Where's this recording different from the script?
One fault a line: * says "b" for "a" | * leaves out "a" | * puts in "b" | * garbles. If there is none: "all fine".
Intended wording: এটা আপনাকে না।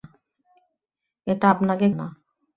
all fine